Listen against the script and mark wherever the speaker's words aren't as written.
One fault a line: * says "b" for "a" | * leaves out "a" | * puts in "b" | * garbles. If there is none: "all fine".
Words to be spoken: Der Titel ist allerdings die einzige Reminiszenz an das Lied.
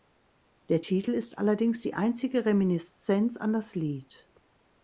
all fine